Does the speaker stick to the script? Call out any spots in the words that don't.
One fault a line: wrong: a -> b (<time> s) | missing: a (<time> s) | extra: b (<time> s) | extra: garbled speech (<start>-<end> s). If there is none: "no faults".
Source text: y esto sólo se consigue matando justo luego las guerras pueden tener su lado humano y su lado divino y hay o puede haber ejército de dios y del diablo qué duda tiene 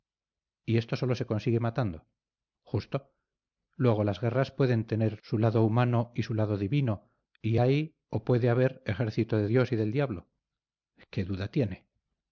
no faults